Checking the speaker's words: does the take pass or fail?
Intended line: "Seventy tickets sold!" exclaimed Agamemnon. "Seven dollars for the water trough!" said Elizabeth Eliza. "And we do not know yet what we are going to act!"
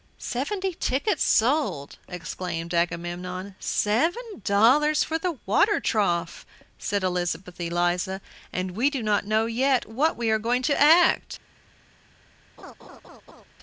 pass